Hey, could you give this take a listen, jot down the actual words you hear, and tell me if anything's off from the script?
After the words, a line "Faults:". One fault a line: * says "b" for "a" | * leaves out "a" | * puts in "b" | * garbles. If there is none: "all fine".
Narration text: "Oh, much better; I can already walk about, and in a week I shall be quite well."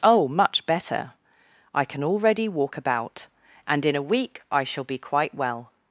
"Oh, much better; I can already walk about, and in a week I shall be quite well."
Faults:
all fine